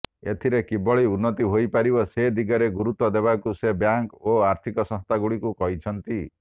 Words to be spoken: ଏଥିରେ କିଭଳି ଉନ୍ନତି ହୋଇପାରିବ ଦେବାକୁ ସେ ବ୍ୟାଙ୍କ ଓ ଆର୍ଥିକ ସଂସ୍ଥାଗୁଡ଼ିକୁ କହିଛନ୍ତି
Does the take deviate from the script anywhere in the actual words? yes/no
yes